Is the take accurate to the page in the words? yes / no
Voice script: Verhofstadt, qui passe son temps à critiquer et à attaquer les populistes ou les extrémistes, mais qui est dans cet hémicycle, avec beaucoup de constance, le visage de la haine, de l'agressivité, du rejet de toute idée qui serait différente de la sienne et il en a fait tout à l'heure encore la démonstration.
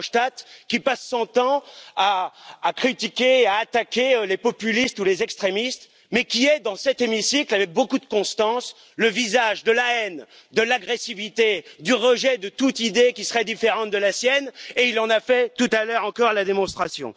yes